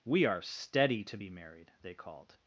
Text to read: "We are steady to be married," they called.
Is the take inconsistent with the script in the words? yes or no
no